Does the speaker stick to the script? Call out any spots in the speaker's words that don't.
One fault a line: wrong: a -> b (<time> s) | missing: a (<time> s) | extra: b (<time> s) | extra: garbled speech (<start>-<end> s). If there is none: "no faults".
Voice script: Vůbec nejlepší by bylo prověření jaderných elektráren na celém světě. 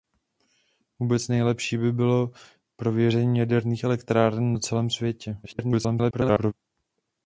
extra: garbled speech (5.4-6.5 s)